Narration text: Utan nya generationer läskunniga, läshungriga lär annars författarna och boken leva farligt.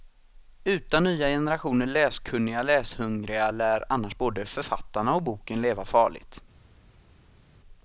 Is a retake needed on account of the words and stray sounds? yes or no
yes